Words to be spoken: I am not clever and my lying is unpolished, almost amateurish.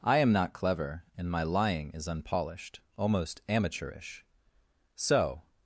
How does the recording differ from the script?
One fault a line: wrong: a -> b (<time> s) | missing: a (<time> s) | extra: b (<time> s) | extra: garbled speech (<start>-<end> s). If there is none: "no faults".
extra: So (5.0 s)